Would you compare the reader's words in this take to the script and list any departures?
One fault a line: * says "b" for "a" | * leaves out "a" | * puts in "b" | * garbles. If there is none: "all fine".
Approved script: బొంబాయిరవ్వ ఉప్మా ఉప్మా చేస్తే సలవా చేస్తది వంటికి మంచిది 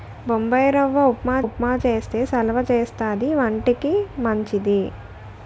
all fine